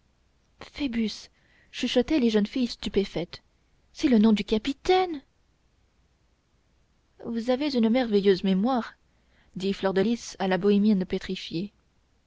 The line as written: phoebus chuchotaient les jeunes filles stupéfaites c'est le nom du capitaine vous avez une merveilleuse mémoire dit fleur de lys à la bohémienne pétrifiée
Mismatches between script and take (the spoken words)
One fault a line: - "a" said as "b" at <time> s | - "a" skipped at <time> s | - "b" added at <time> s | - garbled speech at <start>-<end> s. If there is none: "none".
none